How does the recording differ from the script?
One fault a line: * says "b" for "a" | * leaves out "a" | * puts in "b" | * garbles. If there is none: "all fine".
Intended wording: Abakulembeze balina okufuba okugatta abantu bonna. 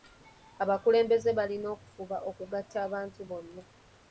all fine